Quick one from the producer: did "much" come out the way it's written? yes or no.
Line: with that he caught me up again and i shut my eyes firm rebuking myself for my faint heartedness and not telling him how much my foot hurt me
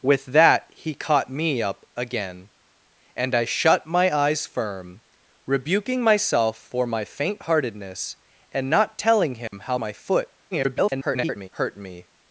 no